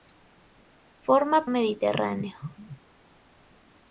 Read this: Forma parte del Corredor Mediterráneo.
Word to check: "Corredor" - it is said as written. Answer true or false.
false